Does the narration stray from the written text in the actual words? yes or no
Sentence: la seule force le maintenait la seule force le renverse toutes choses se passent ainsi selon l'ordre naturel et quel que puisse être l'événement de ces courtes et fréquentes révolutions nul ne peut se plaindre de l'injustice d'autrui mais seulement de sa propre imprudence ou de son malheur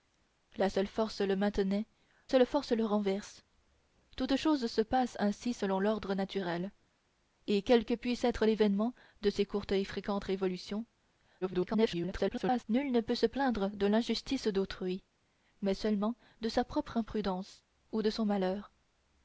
yes